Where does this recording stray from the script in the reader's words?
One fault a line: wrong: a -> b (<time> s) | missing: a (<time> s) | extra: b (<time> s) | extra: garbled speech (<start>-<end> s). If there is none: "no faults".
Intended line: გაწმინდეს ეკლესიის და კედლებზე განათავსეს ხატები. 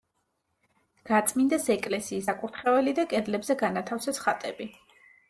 extra: საკურთხეველი (2.3 s)